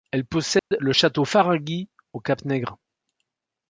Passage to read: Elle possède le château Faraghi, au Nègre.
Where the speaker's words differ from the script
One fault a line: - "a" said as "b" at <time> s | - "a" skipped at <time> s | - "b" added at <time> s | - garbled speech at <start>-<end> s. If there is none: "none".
- "cap" added at 2.2 s